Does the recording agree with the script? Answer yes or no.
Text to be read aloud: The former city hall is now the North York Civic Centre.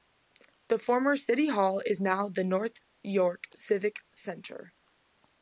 yes